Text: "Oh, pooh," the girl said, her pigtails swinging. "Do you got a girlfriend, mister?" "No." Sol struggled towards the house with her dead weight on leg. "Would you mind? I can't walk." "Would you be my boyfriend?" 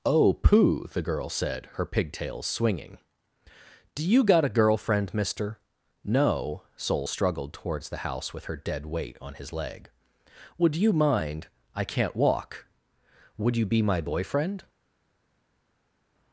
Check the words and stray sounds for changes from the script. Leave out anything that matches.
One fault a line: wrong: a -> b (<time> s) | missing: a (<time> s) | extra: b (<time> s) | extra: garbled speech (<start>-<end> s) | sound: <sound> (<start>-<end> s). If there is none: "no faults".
extra: his (9.3 s)